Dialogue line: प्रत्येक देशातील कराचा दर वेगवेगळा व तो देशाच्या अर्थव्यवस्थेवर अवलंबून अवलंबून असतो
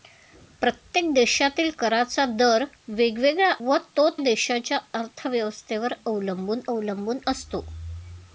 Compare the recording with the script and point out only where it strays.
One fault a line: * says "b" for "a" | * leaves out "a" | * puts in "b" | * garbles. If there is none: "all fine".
all fine